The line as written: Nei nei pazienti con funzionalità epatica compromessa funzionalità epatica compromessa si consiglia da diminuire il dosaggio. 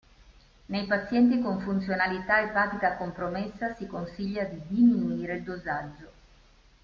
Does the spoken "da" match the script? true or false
false